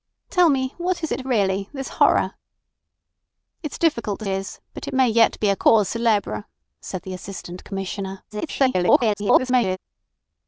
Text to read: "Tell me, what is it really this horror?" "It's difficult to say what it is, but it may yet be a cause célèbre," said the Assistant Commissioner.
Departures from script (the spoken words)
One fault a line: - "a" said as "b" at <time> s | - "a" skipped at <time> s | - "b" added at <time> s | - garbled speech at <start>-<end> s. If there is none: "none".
- "say what it" skipped at 4.2 s
- garbled speech at 8.3-9.8 s